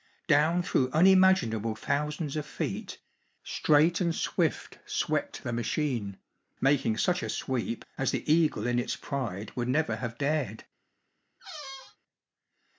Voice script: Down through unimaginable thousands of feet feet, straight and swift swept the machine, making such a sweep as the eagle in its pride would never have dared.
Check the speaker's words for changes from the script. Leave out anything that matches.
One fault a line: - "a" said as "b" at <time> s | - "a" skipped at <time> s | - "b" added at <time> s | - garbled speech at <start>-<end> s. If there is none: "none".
- "feet" skipped at 3.0 s